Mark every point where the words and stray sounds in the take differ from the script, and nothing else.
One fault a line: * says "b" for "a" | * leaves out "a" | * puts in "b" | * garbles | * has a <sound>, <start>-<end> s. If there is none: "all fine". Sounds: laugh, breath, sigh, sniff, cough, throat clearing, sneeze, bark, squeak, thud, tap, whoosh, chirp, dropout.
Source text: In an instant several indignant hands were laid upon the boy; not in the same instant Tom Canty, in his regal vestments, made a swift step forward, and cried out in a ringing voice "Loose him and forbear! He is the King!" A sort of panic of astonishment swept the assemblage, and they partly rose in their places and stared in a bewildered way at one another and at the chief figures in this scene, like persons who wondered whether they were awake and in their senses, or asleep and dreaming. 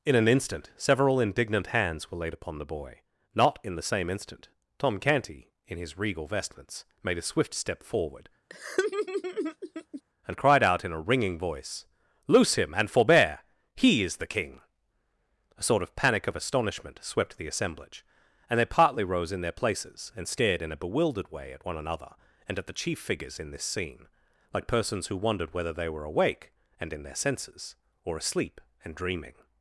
* has a laugh, 8.5-10.0 s